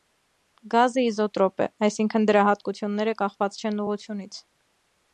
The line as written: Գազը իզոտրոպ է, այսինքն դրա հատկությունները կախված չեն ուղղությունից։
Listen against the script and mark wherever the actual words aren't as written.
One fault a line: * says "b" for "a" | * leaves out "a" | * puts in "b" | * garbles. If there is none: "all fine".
all fine